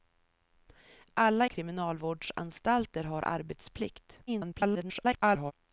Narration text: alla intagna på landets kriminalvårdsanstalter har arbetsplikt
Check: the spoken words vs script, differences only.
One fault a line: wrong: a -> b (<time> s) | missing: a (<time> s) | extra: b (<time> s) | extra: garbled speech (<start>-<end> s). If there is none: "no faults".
missing: intagna på landets (1.5 s)
extra: garbled speech (4.3-5.5 s)